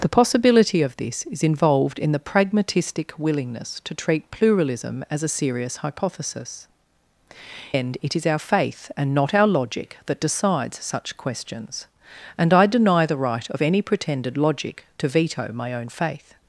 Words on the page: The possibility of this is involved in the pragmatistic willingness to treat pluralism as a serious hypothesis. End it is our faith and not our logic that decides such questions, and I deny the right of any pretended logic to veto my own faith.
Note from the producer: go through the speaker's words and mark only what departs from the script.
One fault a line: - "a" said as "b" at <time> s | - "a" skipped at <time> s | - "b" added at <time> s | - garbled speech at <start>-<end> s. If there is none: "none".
none